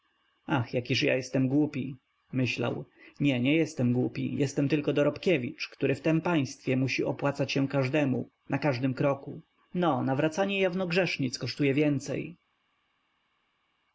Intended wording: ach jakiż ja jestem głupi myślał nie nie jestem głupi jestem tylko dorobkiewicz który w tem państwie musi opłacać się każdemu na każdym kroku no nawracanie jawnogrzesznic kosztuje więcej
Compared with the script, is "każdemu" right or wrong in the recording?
right